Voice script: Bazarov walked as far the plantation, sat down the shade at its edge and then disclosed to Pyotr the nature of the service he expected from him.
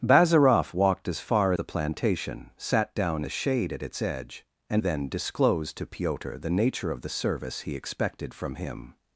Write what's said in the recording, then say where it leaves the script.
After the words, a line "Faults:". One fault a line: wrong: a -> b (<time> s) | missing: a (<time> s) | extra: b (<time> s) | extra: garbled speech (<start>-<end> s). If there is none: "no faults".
Bazarov walked as far the plantation, sat down the shade at its edge and then disclosed to Pyotr the nature of the service he expected from him.
Faults:
no faults